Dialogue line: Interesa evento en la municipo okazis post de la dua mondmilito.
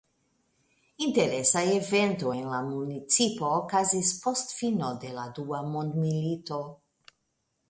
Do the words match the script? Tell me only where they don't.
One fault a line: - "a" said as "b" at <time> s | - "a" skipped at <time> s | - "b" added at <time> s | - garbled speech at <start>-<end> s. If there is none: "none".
- "fino" added at 4.6 s